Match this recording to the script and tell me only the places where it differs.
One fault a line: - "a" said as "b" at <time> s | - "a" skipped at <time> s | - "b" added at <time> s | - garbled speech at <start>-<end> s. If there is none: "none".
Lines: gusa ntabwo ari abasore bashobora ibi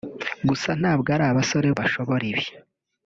none